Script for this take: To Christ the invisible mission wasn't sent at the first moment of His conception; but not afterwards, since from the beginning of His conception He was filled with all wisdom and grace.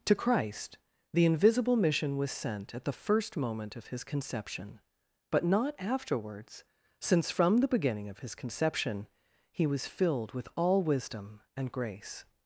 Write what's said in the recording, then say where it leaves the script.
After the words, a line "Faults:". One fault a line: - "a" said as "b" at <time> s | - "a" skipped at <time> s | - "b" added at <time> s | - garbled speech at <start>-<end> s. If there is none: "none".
To Christ the invisible mission was sent at the first moment of His conception; but not afterwards, since from the beginning of His conception He was filled with all wisdom and grace.
Faults:
- "wasn't" said as "was" at 2.2 s